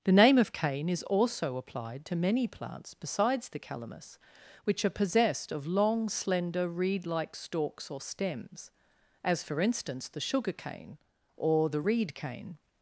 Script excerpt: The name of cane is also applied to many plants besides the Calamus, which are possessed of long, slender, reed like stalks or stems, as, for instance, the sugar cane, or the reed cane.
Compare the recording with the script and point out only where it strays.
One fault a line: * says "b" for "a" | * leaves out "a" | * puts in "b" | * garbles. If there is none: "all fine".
all fine